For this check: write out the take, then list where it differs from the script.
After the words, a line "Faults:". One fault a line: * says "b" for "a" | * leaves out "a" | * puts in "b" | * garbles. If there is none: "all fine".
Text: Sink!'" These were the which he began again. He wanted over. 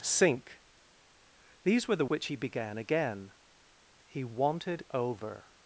Sink!'" These were the which he began again. He wanted over.
Faults:
all fine